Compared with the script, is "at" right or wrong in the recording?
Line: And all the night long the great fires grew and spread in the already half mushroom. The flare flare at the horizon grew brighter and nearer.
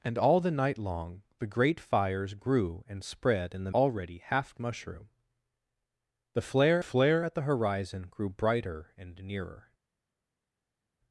right